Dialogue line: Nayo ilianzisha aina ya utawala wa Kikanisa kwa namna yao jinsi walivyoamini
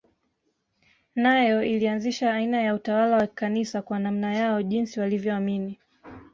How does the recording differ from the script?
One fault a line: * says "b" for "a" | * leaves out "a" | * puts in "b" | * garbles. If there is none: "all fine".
all fine